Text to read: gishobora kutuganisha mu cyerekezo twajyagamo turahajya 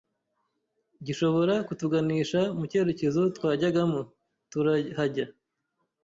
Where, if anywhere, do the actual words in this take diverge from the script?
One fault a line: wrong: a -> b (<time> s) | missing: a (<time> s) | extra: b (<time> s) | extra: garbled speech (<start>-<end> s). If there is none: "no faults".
no faults